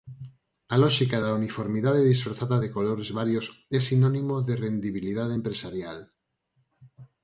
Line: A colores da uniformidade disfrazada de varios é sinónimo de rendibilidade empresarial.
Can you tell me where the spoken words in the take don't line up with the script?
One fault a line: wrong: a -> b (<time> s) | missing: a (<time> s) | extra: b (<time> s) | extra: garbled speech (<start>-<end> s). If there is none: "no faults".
wrong: colores -> lóxica (0.8 s)
extra: colores (2.8 s)